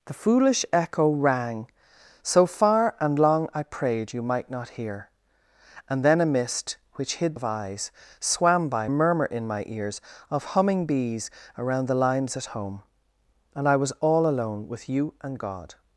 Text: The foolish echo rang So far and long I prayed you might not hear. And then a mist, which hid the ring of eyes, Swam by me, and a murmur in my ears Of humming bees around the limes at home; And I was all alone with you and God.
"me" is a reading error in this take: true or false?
true